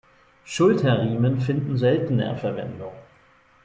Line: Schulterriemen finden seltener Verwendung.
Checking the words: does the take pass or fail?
pass